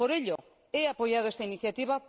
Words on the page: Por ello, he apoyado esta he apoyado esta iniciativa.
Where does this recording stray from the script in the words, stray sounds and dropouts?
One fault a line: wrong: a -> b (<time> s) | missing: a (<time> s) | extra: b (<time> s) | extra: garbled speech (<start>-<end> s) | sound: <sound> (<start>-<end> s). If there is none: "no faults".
sound: dropout (0.4-0.4 s)
missing: he apoyado esta (1.4 s)